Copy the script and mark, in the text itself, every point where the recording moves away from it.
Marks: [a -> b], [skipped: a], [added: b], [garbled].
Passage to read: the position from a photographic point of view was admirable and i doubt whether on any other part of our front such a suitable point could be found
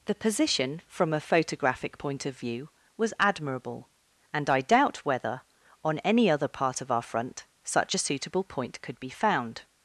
the position from a photographic point of view was admirable and i doubt whether on any other part of our front such a suitable point could be found